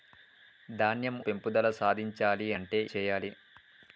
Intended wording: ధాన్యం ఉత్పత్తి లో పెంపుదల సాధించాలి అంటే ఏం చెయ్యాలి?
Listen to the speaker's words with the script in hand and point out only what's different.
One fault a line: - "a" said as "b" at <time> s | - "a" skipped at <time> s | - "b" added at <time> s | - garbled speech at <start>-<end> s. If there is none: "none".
- "ఉత్పత్తి లో" skipped at 1.2 s
- "ఏం" skipped at 2.8 s